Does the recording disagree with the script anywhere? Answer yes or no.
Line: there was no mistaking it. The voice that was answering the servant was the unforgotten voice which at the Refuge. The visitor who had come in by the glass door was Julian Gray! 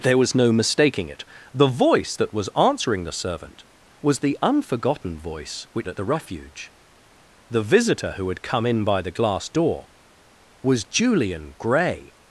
no